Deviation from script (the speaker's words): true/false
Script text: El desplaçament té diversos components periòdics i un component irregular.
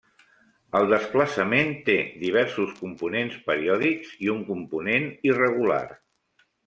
false